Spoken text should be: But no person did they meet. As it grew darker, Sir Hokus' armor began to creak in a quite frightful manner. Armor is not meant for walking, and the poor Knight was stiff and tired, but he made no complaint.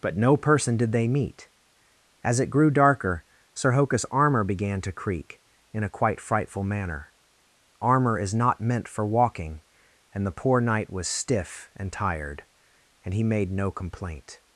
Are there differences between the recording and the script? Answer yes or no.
yes